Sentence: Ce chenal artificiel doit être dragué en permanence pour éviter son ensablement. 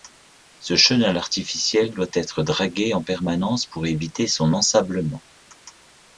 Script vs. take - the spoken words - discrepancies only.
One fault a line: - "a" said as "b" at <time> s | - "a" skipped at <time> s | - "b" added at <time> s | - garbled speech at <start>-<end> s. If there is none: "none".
none